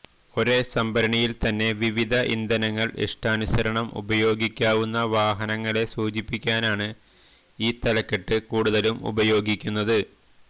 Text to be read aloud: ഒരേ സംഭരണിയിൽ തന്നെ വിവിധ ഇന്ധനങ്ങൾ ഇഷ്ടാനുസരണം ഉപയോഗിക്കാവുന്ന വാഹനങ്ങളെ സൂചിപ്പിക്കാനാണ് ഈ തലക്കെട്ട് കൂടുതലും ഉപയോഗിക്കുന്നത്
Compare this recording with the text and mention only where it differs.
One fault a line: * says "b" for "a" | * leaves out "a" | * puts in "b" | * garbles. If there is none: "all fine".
all fine